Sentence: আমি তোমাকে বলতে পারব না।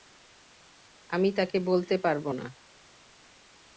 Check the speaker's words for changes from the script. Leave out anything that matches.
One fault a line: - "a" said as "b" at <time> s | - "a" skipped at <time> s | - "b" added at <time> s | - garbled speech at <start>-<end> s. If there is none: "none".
- "তোমাকে" said as "তাকে" at 1.4 s